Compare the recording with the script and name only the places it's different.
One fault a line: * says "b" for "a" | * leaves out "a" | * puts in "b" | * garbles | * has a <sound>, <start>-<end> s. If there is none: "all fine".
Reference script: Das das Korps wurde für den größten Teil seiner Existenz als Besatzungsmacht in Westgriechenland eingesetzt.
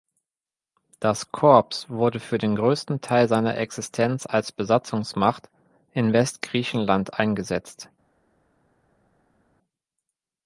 * leaves out "das"